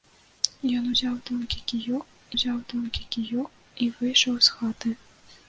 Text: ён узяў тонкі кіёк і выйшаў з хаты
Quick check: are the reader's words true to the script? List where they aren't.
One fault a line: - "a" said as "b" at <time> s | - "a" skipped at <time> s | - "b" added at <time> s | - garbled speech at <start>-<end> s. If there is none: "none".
- "узяў тонкі кіёк" added at 2.3 s